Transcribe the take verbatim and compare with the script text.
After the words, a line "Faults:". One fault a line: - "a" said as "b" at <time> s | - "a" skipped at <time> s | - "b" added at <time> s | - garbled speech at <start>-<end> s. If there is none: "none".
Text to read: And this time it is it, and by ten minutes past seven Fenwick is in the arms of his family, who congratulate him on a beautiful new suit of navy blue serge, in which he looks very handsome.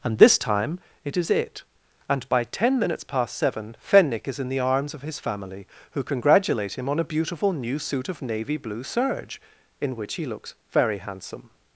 And this time it is it, and by ten minutes past seven Fenwick is in the arms of his family, who congratulate him on a beautiful new suit of navy blue serge, in which he looks very handsome.
Faults:
none